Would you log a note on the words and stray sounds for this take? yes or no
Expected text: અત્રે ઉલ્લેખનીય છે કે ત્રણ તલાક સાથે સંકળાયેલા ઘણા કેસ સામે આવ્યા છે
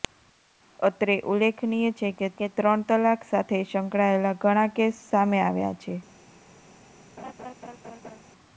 yes